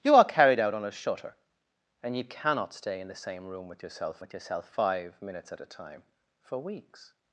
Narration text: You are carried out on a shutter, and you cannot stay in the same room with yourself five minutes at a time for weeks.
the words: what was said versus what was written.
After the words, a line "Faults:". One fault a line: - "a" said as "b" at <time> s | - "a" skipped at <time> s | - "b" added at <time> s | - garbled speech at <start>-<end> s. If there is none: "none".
You are carried out on a shutter, and you cannot stay in the same room with yourself with yourself five minutes at a time for weeks.
Faults:
- "with yourself" added at 4.2 s